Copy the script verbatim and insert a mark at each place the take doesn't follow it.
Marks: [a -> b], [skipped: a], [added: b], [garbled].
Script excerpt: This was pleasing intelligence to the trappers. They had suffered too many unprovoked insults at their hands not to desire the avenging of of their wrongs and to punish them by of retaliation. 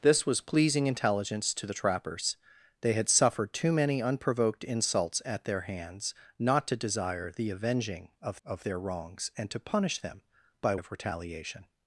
This was pleasing intelligence to the trappers. They had suffered too many unprovoked insults at their hands not to desire the avenging of of their wrongs and to punish them by of retaliation.